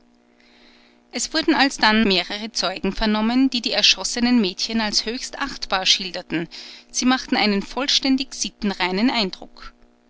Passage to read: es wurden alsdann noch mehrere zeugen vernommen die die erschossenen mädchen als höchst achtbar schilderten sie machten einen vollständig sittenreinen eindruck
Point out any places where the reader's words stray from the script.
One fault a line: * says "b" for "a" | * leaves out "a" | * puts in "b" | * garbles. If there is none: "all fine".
* leaves out "noch"